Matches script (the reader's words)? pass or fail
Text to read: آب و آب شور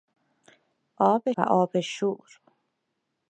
pass